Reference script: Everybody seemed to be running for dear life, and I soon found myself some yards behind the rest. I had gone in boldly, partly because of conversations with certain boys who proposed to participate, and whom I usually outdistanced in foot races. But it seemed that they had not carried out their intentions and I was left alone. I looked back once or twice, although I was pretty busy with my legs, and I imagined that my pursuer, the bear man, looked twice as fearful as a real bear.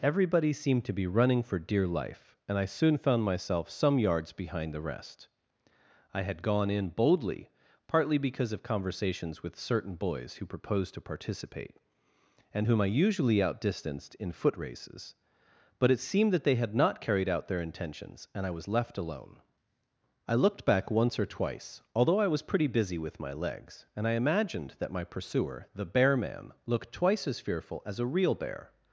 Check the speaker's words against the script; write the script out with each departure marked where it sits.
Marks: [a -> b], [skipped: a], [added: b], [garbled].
Everybody seemed to be running for dear life, and I soon found myself some yards behind the rest. I had gone in boldly, partly because of conversations with certain boys who proposed to participate, and whom I usually outdistanced in foot races. But it seemed that they had not carried out their intentions and I was left alone. I looked back once or twice, although I was pretty busy with my legs, and I imagined that my pursuer, the bear man, looked twice as fearful as a real bear.